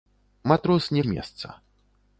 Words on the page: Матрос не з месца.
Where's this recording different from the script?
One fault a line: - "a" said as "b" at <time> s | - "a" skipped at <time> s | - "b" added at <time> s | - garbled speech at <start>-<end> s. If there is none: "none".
none